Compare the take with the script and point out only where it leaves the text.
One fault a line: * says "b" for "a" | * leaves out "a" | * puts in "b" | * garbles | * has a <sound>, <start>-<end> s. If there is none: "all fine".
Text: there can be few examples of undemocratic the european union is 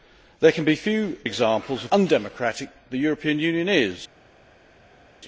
all fine